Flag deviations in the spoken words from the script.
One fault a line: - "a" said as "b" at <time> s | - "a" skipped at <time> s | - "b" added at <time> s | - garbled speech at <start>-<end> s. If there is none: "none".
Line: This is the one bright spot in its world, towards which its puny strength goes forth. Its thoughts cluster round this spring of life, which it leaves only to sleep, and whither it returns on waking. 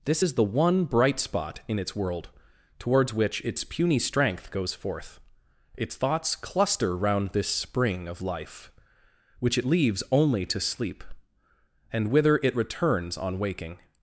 none